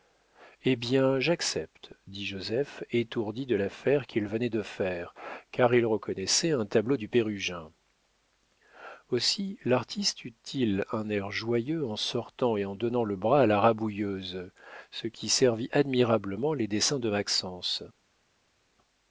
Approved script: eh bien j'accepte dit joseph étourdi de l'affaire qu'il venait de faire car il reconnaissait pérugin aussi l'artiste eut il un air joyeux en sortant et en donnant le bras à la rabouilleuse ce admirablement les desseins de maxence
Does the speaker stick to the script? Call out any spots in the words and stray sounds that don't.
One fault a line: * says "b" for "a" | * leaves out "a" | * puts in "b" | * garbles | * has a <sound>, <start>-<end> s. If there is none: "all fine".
* puts in "un tableau du"
* puts in "qui servit"